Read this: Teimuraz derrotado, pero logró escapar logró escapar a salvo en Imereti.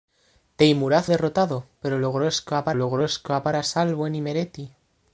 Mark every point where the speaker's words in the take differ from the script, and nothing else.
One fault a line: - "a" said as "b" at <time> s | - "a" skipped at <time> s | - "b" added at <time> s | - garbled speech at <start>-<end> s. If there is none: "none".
none